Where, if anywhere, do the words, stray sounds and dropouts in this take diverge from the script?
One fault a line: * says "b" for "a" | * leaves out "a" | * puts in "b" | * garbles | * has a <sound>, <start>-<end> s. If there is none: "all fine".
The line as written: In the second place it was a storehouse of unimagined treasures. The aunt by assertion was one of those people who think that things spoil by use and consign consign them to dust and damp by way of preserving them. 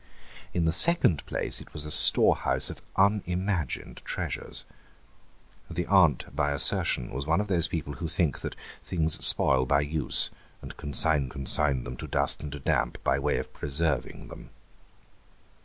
all fine